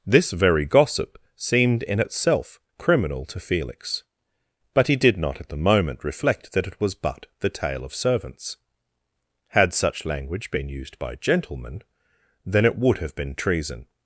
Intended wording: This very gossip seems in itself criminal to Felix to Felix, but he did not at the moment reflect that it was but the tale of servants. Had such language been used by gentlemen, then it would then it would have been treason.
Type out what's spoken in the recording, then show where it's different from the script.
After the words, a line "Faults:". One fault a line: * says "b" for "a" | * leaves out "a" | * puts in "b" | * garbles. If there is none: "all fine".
This very gossip seemed in itself criminal to Felix, but he did not at the moment reflect that it was but the tale of servants. Had such language been used by gentlemen, then it would have been treason.
Faults:
* says "seemed" for "seems"
* leaves out "to Felix"
* leaves out "then it would"